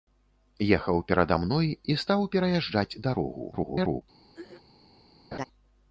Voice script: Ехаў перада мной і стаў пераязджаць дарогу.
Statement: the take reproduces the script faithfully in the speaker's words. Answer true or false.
false